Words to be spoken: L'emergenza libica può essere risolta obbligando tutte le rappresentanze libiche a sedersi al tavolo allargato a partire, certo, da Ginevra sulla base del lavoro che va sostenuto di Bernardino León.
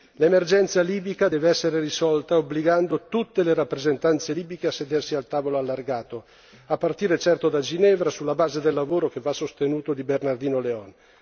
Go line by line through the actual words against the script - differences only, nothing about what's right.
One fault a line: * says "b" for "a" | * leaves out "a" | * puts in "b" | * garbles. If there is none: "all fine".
* says "deve" for "può"